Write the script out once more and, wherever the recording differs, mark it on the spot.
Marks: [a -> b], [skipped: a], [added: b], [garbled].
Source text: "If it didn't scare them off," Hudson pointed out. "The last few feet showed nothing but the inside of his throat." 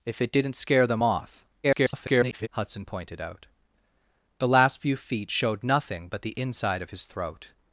"If it didn't scare them off," [garbled] Hudson pointed out. "The last few feet showed nothing but the inside of his throat."